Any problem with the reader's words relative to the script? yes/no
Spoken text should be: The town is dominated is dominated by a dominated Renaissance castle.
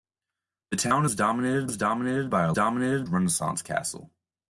no